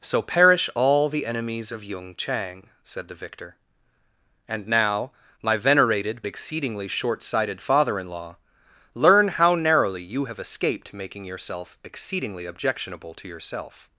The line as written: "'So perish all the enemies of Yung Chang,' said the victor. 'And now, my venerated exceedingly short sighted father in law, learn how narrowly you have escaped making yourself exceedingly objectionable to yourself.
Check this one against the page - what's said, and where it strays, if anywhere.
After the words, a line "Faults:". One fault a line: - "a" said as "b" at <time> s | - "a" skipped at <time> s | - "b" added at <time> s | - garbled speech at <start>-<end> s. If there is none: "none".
"'So perish all the enemies of Yung Chang,' said the victor. 'And now, my venerated exceedingly short sighted father in law, learn how narrowly you have escaped making yourself exceedingly objectionable to yourself.
Faults:
none